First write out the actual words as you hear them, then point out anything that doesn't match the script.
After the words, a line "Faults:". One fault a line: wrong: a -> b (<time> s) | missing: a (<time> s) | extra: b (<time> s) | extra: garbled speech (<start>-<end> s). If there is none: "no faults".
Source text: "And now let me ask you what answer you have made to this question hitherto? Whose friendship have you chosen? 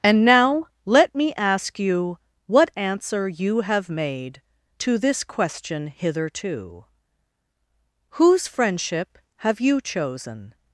"And now let me ask you what answer you have made to this question hitherto? Whose friendship have you chosen?
Faults:
no faults